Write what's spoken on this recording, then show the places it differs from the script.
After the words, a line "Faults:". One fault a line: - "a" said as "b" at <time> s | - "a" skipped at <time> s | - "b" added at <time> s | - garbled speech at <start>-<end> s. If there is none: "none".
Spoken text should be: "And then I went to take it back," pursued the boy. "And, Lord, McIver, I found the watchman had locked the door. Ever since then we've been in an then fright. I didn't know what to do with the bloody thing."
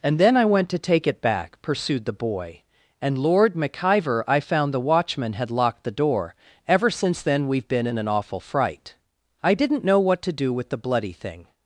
"And then I went to take it back," pursued the boy. "And, Lord, McIver, I found the watchman had locked the door. Ever since then we've been in an awful fright. I didn't know what to do with the bloody thing."
Faults:
- "then" said as "awful" at 8.1 s